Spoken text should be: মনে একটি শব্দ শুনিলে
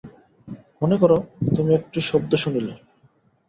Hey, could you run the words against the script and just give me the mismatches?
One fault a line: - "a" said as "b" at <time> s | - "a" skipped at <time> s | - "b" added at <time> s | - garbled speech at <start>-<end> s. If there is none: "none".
- "কর তুমি" added at 1.0 s